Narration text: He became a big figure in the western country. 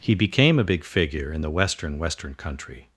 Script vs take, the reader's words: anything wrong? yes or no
yes